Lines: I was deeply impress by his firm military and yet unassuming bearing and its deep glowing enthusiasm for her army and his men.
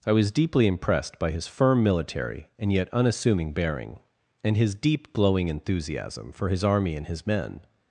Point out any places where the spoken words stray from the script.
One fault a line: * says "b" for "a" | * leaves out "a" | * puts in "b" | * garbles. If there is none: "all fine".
* says "impressed" for "impress"
* says "his" for "its"
* says "his" for "her"